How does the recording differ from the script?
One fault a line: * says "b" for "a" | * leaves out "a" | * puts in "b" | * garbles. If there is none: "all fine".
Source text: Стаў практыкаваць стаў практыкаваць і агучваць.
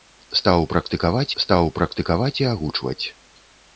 all fine